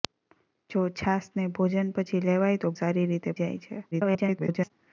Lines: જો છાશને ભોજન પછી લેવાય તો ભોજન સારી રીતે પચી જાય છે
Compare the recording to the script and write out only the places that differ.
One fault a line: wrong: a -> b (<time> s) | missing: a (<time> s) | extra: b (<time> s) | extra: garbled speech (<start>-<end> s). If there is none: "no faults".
missing: ભોજન (2.8 s)
missing: પચી (3.4 s)
extra: garbled speech (3.9-4.7 s)